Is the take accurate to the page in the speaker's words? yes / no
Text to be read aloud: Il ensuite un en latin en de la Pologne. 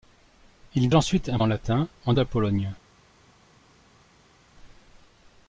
yes